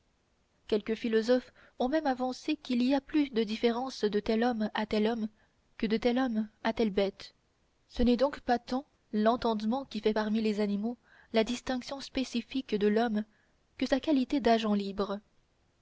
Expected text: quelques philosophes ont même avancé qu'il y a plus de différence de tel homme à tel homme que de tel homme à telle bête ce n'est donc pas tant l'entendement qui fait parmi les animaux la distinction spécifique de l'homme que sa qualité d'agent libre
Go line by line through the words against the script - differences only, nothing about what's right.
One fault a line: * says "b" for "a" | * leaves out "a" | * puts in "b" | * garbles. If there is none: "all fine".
all fine